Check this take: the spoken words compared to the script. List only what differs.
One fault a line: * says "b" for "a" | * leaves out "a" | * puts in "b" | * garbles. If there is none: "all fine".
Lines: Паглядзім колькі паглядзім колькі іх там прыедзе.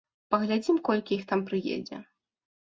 * leaves out "паглядзім колькі"